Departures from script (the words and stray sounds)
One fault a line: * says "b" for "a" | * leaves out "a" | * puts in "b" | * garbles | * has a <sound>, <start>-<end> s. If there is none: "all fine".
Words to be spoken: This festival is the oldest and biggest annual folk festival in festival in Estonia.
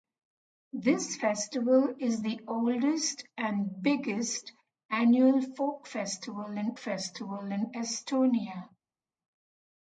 all fine